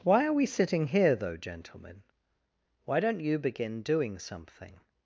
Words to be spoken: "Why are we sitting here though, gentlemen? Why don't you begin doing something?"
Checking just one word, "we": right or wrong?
right